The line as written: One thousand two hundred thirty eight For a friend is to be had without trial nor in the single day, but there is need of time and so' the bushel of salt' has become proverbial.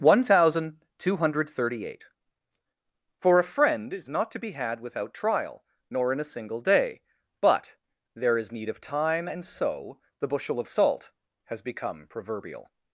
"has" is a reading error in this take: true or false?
false